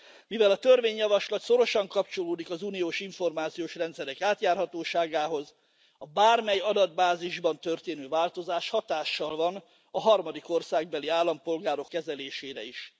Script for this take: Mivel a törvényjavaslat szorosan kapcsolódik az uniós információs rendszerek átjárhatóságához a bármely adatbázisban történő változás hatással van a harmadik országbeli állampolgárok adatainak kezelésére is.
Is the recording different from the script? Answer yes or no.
yes